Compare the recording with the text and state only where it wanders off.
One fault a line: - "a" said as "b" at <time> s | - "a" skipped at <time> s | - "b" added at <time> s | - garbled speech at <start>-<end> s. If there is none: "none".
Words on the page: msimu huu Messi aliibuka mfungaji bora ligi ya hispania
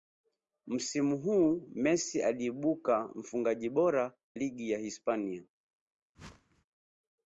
none